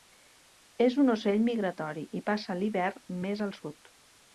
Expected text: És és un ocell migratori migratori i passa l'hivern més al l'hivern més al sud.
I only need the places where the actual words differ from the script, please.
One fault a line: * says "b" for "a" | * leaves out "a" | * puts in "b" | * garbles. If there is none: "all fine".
* leaves out "és"
* leaves out "migratori"
* leaves out "l'hivern més al"